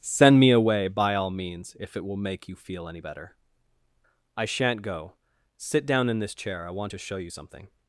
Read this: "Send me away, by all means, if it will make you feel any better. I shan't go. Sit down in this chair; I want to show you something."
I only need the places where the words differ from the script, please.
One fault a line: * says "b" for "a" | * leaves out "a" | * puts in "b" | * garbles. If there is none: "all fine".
all fine